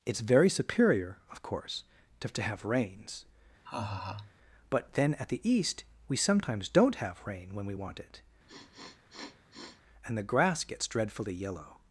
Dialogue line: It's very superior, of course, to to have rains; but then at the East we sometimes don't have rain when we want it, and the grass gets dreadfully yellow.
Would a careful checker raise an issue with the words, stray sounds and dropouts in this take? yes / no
yes